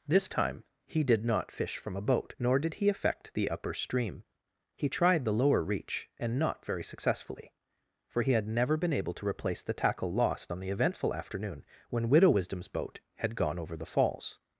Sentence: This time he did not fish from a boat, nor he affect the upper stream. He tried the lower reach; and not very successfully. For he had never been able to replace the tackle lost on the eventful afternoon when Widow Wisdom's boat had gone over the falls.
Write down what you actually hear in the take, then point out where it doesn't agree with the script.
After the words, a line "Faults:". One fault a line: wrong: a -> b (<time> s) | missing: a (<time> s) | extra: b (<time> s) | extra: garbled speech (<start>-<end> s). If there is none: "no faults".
This time he did not fish from a boat, nor did he affect the upper stream. He tried the lower reach; and not very successfully. For he had never been able to replace the tackle lost on the eventful afternoon when Widow Wisdom's boat had gone over the falls.
Faults:
extra: did (2.6 s)